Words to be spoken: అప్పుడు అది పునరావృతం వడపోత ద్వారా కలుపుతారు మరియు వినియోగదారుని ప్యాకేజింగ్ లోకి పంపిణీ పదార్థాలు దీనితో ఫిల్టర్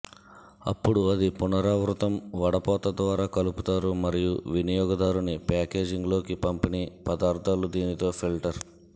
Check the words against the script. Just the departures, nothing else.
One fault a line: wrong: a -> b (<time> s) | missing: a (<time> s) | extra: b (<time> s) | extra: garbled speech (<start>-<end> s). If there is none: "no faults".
no faults